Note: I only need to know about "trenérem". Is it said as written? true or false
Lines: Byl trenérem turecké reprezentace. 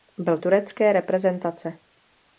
false